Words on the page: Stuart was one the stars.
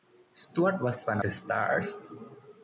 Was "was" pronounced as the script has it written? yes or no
yes